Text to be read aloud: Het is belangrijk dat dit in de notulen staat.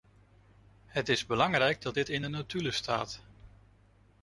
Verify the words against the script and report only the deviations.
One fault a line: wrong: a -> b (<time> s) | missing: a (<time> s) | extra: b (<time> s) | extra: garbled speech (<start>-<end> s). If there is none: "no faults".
no faults